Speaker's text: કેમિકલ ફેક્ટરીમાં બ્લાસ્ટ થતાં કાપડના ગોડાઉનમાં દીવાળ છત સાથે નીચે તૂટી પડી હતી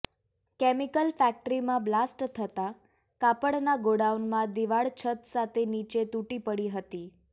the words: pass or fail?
pass